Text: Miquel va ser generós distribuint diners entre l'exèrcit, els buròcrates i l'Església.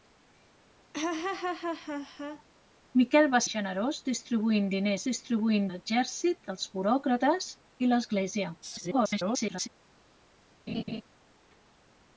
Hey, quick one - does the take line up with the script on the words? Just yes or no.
no